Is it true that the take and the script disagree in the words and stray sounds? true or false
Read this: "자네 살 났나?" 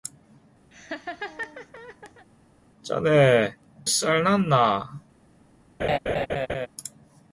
true